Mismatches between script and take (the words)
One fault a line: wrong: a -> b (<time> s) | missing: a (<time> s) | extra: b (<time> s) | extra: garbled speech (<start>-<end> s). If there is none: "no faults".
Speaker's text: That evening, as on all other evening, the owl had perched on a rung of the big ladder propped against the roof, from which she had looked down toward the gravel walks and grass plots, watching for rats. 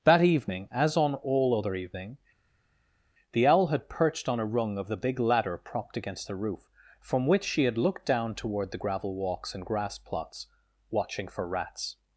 no faults